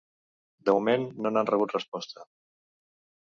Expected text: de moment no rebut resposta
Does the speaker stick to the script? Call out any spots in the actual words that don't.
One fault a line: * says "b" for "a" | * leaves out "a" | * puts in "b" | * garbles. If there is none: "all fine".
* puts in "n'han"